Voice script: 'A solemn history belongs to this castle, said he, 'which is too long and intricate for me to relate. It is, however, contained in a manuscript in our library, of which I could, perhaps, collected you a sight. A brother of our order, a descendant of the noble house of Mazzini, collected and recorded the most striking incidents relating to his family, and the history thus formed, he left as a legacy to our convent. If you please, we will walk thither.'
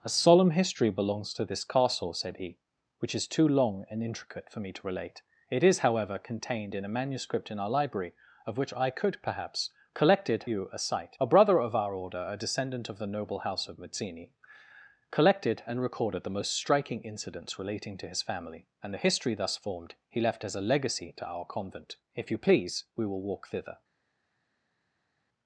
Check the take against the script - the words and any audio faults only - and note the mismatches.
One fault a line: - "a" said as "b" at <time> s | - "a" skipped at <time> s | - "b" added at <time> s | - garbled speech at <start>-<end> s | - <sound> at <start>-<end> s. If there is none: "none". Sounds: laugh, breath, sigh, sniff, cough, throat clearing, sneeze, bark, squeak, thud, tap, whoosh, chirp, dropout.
none